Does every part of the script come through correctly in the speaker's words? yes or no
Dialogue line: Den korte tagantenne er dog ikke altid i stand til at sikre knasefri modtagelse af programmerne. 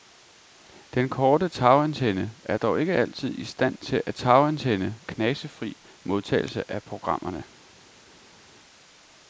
no